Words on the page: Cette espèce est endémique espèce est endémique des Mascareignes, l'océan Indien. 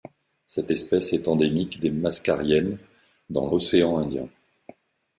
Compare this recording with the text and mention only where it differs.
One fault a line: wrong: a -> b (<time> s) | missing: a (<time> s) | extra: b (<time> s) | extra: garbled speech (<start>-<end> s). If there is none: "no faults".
missing: espèce est endémique (1.8 s)
extra: dans (3.3 s)